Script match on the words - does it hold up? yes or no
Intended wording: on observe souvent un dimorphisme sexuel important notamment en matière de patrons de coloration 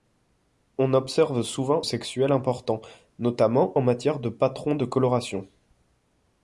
no